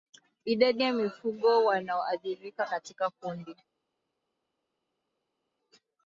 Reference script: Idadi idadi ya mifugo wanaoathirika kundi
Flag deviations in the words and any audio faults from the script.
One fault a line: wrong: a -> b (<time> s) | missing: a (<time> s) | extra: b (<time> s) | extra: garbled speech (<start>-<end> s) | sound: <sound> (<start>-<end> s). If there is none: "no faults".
missing: idadi (0.8 s)
extra: katika (2.6 s)